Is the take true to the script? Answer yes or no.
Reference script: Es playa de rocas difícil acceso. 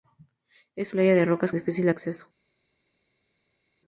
yes